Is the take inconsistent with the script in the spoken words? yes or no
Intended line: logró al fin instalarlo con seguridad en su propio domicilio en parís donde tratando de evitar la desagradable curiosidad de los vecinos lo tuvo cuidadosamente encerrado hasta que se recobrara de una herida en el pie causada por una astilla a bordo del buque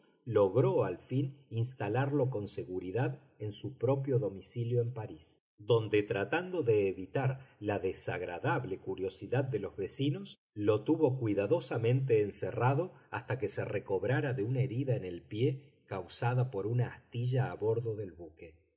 no